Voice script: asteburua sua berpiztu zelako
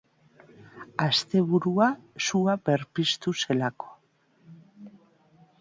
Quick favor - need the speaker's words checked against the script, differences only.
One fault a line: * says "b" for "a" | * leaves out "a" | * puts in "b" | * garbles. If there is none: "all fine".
all fine